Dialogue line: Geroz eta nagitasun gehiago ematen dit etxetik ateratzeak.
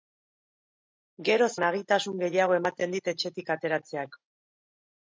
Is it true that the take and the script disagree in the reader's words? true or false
true